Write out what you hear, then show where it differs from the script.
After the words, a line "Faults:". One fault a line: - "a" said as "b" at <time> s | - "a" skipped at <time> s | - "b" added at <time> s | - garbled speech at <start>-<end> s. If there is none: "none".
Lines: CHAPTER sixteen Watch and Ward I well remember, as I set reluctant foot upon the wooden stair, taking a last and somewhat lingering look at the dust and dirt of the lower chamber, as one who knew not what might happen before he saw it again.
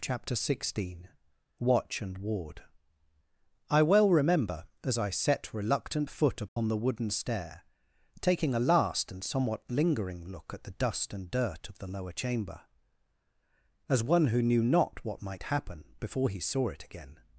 CHAPTER sixteen Watch and Ward I well remember, as I set reluctant foot upon the wooden stair, taking a last and somewhat lingering look at the dust and dirt of the lower chamber, as one who knew not what might happen before he saw it again.
Faults:
none